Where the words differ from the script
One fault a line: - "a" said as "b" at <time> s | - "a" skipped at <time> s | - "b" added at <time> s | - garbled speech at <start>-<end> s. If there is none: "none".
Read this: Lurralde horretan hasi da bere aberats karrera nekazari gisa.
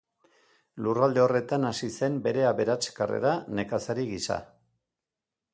- "da" said as "zen" at 2.0 s